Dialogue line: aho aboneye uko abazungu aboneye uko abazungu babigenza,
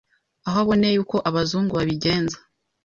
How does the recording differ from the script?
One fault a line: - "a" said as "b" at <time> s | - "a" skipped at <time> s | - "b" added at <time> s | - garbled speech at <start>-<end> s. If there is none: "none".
- "aboneye uko abazungu" skipped at 1.7 s